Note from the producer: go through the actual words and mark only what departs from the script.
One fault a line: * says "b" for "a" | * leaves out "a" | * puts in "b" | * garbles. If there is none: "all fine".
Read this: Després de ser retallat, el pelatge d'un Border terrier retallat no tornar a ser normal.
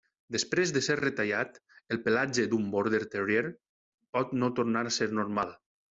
* says "pot" for "retallat"